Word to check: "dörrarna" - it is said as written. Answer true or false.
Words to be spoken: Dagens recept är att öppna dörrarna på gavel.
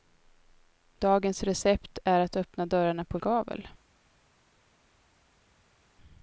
true